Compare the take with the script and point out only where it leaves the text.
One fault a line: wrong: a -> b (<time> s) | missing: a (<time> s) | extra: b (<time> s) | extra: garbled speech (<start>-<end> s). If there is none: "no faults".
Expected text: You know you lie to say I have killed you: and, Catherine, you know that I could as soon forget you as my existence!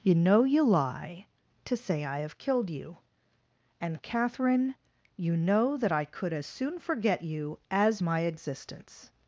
no faults